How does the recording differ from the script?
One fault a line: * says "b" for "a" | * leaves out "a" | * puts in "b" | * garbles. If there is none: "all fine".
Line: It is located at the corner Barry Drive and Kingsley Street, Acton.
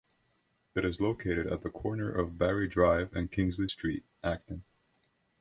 * puts in "of"